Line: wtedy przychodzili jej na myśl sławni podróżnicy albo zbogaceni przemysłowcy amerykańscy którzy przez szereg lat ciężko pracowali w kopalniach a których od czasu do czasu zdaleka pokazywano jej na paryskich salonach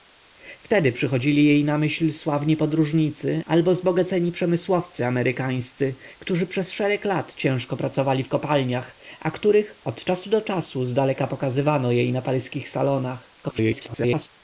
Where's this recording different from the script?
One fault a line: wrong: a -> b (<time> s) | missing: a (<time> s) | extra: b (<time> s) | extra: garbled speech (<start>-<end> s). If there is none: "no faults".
extra: garbled speech (13.4-14.3 s)